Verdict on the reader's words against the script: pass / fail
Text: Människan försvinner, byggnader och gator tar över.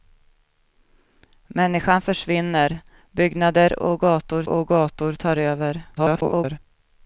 fail